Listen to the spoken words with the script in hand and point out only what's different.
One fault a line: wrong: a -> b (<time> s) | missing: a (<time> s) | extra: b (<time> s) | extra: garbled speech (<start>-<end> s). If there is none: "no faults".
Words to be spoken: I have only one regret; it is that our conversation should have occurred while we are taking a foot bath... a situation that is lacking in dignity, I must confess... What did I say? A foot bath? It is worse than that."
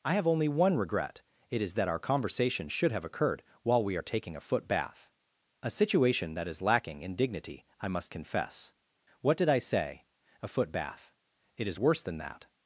no faults